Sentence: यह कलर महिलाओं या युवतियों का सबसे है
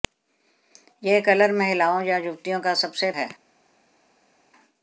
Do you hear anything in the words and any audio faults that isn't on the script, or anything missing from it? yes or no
no